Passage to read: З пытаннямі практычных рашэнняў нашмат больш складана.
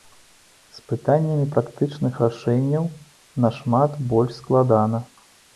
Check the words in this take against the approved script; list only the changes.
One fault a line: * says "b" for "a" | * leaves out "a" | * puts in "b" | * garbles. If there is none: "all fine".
all fine